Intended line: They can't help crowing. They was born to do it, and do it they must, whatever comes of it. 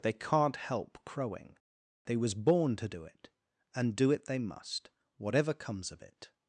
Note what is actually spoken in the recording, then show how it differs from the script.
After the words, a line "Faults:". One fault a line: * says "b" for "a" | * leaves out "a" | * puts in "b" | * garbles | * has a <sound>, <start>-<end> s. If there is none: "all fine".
They can't help crowing. They was born to do it, and do it they must, whatever comes of it.
Faults:
all fine